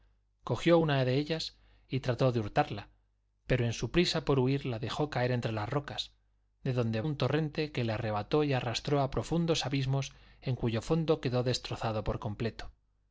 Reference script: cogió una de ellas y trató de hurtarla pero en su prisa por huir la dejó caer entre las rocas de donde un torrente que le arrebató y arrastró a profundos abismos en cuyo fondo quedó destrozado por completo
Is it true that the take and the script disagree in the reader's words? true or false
false